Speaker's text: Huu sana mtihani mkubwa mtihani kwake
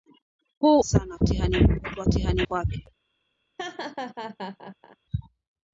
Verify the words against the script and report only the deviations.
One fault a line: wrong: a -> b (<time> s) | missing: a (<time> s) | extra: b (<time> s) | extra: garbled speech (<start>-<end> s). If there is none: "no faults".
no faults